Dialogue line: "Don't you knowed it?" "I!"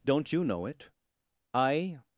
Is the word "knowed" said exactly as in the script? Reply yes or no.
no